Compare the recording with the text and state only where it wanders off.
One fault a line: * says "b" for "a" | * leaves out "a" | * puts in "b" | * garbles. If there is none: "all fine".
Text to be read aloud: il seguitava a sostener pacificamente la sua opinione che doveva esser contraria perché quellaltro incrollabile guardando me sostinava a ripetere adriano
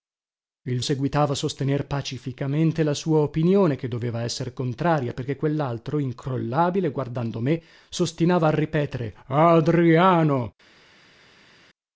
all fine